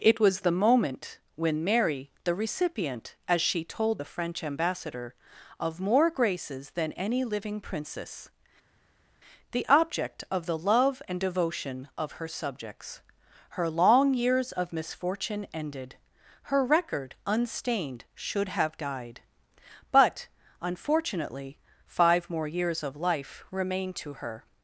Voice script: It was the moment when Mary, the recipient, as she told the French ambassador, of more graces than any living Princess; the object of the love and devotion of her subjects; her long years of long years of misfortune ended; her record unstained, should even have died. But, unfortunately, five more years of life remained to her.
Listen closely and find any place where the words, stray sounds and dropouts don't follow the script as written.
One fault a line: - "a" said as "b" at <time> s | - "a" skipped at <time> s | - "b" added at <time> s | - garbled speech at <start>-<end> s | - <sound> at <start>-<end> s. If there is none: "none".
- "long years of" skipped at 14.7 s
- "even" skipped at 18.5 s